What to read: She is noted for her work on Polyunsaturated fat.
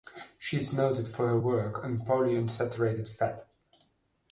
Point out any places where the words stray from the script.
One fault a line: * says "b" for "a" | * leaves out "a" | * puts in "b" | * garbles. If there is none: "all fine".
all fine